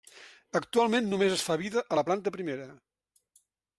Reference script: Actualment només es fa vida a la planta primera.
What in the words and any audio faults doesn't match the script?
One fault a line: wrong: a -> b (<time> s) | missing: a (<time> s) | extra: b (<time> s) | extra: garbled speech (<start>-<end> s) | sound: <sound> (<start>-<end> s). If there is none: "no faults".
no faults